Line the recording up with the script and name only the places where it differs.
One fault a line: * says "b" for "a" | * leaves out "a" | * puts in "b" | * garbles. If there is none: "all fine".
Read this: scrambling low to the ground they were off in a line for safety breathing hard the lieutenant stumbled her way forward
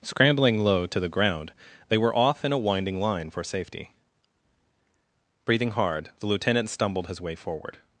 * puts in "winding"
* says "his" for "her"